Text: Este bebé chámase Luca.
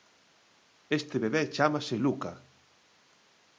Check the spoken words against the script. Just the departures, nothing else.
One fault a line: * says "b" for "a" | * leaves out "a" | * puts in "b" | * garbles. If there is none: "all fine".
all fine